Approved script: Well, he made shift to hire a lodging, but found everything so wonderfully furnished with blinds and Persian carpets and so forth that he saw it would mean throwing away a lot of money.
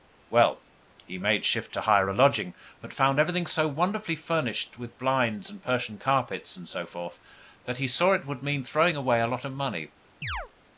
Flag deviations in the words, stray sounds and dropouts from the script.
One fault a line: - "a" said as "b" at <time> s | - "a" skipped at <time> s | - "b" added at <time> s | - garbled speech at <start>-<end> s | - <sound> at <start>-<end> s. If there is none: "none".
- chirp at 10.2-10.5 s